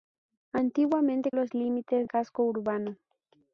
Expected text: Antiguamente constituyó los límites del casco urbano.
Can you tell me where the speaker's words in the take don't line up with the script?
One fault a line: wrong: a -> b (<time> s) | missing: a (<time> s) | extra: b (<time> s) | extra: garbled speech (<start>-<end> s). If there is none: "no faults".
missing: constituyó (1.3 s)
missing: del (2.1 s)